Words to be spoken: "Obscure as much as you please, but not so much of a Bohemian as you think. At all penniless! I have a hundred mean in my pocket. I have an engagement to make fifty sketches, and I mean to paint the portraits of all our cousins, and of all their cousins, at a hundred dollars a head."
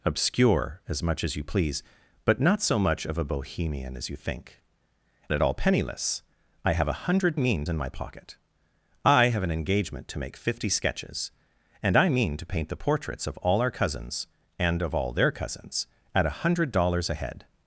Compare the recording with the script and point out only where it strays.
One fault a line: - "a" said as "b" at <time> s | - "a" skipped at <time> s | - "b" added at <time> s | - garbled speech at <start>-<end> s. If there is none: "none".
none